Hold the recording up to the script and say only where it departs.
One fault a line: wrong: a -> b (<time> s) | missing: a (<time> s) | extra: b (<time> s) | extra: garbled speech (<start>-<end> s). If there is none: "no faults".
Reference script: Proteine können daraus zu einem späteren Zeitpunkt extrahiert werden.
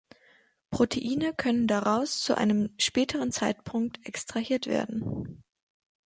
no faults